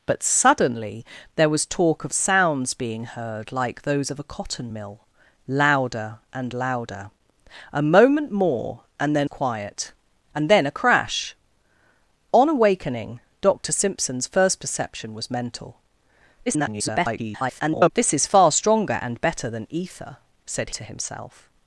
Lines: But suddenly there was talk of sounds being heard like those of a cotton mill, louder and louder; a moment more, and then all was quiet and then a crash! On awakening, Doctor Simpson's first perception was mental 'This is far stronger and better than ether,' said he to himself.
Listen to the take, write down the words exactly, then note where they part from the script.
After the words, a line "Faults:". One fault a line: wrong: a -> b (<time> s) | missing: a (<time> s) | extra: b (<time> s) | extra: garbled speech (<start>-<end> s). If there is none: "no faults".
But suddenly there was talk of sounds being heard like those of a cotton mill, louder and louder; a moment more, and then quiet and then a crash! On awakening, Doctor Simpson's first perception was mental [garbled] 'This is far stronger and better than ether,' said to himself.
Faults:
missing: all was (9.3 s)
extra: garbled speech (16.5-17.9 s)
missing: he (20.7 s)